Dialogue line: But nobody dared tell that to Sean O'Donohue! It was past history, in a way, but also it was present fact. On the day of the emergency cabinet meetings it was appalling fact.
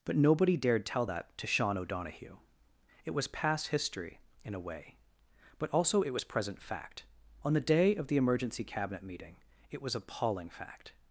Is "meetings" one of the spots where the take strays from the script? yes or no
yes